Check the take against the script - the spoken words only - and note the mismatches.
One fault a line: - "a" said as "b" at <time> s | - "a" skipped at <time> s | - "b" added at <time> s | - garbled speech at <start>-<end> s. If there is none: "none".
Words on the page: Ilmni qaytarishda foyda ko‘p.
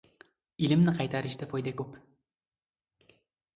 none